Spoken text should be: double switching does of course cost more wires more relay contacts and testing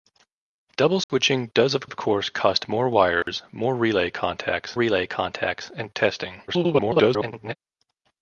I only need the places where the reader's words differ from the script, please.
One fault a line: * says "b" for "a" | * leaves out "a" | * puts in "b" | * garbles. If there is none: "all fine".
* puts in "of"
* puts in "relay contacts"
* garbles